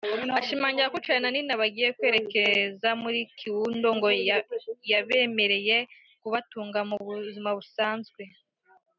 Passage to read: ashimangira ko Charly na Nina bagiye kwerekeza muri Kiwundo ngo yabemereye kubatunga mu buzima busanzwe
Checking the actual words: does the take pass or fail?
pass